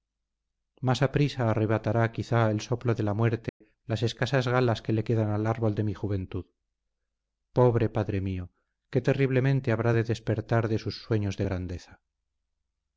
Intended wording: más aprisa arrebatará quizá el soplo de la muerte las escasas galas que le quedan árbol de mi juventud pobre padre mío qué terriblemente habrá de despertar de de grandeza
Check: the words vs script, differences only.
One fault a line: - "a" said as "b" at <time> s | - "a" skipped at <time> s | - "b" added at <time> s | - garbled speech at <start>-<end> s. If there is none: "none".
- "al" added at 5.3 s
- "sus sueños" added at 10.8 s